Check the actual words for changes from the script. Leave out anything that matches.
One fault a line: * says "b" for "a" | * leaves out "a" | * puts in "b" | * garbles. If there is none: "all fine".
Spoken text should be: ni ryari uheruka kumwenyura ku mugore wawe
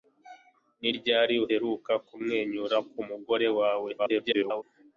* garbles